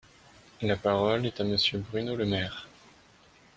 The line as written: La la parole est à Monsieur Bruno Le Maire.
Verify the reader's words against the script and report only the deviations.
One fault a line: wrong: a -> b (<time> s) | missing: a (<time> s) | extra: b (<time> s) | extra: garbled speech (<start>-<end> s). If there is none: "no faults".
missing: la (0.8 s)